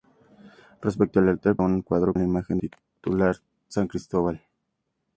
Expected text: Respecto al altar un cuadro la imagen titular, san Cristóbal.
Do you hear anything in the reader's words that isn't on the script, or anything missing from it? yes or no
no